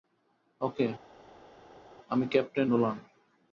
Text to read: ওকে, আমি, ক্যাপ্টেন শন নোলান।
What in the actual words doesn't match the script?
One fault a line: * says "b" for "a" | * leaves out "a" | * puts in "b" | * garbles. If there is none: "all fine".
* leaves out "শন"